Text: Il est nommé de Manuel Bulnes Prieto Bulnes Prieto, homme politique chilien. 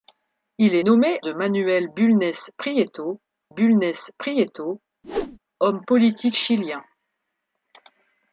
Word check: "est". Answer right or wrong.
right